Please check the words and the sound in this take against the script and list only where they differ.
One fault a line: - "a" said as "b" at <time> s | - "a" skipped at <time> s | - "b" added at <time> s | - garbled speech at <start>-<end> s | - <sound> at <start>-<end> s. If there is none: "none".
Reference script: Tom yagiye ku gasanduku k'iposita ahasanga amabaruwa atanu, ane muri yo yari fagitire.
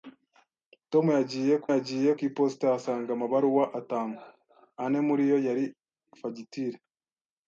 - "gasanduku" said as "yagiye" at 1.7 s